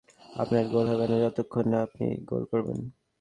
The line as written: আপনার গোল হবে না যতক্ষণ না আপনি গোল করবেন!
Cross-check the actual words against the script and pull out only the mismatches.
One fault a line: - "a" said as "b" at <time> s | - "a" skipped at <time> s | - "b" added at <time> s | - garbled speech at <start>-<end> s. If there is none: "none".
none